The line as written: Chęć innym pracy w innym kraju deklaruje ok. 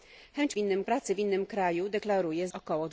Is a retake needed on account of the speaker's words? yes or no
no